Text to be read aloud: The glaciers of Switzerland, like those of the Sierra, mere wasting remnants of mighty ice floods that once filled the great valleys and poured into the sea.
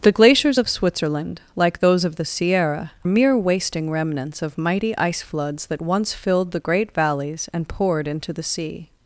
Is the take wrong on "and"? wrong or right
right